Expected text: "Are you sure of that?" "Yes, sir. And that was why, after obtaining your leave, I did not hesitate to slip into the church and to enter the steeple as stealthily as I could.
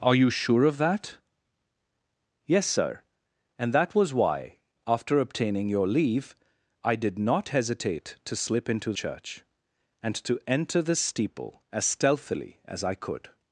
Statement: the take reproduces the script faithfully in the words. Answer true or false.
false